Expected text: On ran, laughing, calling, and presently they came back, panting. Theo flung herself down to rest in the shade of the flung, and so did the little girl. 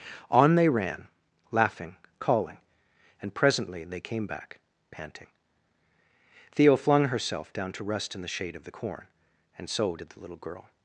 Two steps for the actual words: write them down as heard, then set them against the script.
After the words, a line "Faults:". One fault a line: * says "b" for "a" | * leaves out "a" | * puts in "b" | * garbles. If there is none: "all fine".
On they ran, laughing, calling, and presently they came back, panting. Theo flung herself down to rest in the shade of the corn, and so did the little girl.
Faults:
* puts in "they"
* says "corn" for "flung"